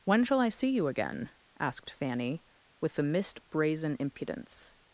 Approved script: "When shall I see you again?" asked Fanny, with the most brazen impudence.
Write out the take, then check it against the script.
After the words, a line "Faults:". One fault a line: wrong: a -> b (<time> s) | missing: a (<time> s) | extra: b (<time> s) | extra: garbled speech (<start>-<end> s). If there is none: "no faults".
"When shall I see you again?" asked Fanny, with the mist brazen impudence.
Faults:
wrong: most -> mist (3.0 s)